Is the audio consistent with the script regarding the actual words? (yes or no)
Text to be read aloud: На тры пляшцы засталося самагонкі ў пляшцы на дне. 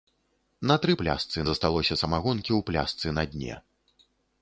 yes